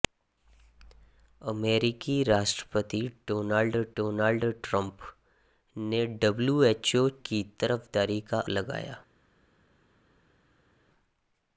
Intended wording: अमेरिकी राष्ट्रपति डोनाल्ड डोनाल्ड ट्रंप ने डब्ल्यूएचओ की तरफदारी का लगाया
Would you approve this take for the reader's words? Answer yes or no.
yes